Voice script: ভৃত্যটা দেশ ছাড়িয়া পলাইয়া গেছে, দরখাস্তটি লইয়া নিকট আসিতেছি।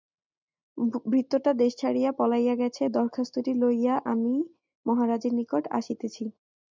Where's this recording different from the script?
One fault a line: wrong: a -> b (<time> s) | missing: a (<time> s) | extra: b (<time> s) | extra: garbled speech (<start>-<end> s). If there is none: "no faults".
extra: আমি মহারাজের (4.1 s)